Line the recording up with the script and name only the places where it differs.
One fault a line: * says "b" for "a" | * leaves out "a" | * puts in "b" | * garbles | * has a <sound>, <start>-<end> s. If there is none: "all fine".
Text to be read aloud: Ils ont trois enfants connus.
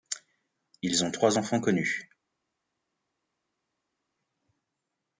all fine